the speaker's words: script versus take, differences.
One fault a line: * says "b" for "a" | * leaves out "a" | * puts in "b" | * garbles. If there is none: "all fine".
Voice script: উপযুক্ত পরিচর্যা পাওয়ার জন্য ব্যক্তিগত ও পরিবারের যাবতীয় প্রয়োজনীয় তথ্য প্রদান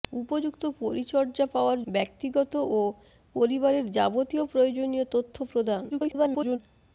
* leaves out "জন্য"
* garbles